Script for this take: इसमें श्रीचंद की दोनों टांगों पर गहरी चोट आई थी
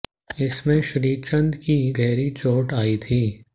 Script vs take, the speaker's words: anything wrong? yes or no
yes